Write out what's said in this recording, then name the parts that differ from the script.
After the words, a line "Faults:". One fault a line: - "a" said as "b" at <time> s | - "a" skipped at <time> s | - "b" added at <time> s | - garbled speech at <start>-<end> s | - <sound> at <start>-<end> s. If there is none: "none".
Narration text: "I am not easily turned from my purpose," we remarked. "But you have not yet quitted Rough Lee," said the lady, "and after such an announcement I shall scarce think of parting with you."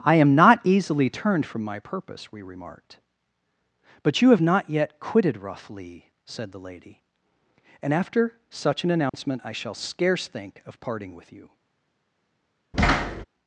"I am not easily turned from my purpose," we remarked. "But you have not yet quitted Rough Lee," said the lady, "and after such an announcement I shall scarce think of parting with you."
Faults:
- dropout at 9.1-9.1 s
- thud at 12.7-13.2 s